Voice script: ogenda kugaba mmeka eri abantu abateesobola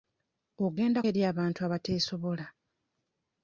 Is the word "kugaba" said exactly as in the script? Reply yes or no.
no